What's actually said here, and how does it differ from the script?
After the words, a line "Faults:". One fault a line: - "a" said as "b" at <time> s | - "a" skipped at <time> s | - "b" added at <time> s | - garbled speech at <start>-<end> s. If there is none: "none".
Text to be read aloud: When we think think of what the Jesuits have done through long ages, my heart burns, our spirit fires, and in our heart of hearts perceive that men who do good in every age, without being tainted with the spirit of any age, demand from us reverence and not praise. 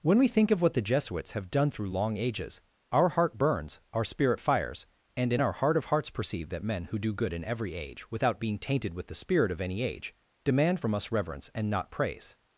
When we think of what the Jesuits have done through long ages, our heart burns, our spirit fires, and in our heart of hearts perceive that men who do good in every age, without being tainted with the spirit of any age, demand from us reverence and not praise.
Faults:
- "think" skipped at 0.5 s
- "my" said as "our" at 2.9 s